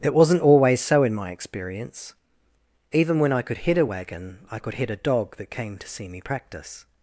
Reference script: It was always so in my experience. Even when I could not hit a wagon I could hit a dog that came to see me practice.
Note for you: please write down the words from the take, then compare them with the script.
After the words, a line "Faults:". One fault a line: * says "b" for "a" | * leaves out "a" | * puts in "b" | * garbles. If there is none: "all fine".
It wasn't always so in my experience. Even when I could hit a wagon I could hit a dog that came to see me practice.
Faults:
* says "wasn't" for "was"
* leaves out "not"